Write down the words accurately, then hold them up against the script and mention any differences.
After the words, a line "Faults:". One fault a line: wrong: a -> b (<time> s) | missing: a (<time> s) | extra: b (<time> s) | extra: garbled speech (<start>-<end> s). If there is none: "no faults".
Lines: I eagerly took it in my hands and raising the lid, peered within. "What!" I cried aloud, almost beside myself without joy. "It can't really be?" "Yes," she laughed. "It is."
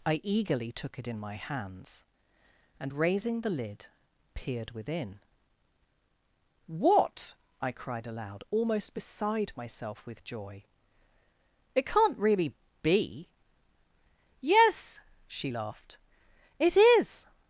I eagerly took it in my hands and raising the lid, peered within. "What!" I cried aloud, almost beside myself with joy. "It can't really be?" "Yes," she laughed. "It is."
Faults:
wrong: without -> with (10.1 s)